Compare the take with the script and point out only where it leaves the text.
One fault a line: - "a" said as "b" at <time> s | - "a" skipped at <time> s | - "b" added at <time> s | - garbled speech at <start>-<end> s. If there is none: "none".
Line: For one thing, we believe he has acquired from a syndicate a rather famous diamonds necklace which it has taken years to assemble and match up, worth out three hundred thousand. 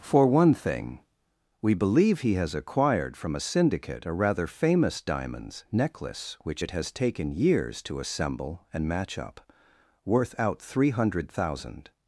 none